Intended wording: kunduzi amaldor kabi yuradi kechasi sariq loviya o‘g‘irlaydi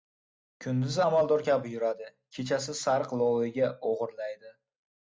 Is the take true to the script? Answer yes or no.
yes